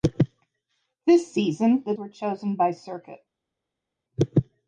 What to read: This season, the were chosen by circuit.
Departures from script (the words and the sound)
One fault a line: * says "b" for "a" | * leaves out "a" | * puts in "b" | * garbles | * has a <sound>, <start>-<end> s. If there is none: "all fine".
all fine